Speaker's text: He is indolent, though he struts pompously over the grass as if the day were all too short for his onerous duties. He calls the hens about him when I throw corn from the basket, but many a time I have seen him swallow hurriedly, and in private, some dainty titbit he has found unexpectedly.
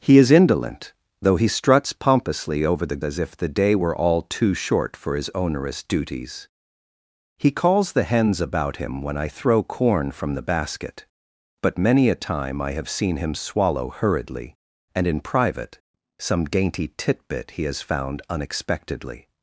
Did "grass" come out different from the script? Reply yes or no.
yes